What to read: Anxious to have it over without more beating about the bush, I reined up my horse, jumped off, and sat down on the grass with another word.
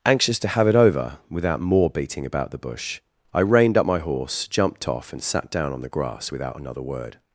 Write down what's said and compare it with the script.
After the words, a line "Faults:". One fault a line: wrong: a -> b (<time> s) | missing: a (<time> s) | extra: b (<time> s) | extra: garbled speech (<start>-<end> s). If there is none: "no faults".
Anxious to have it over without more beating about the bush, I reined up my horse, jumped off, and sat down on the grass without another word.
Faults:
wrong: with -> without (6.3 s)